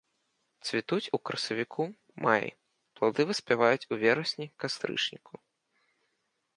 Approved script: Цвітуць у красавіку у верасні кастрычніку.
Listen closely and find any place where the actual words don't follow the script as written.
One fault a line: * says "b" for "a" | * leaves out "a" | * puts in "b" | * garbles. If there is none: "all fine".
* puts in "маі плады выспяваюць"